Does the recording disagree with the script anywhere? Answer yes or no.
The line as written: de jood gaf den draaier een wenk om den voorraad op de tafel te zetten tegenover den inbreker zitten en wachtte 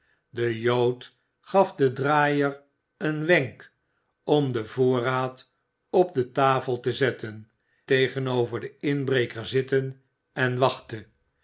no